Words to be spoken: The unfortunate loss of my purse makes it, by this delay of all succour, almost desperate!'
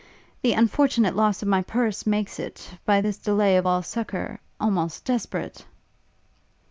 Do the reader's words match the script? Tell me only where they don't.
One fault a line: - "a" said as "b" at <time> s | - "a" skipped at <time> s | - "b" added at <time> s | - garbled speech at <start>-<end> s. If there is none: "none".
none